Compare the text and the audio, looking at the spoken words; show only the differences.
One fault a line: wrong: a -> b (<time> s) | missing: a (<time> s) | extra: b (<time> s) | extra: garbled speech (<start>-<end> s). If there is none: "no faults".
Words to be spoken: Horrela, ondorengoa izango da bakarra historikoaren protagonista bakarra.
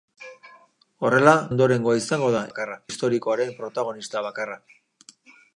no faults